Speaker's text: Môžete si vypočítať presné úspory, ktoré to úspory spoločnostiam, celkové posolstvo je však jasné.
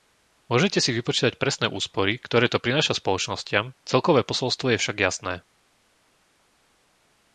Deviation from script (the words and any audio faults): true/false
true